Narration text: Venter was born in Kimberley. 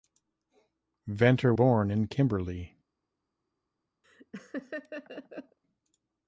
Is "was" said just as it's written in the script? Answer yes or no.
no